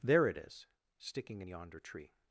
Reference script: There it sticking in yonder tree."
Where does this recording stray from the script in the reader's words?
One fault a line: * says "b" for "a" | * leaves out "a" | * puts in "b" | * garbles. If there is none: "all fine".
* puts in "is"